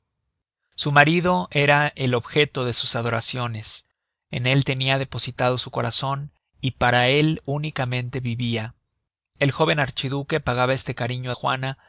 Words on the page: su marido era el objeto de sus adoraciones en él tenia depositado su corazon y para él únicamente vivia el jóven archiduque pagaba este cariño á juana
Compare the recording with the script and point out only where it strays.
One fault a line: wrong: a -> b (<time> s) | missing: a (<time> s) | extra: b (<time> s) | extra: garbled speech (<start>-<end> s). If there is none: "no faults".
no faults